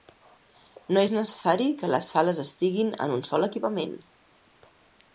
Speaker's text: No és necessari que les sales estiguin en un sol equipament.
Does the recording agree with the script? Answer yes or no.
yes